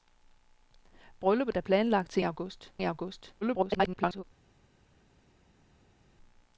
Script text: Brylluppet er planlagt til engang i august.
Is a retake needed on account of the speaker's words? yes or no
yes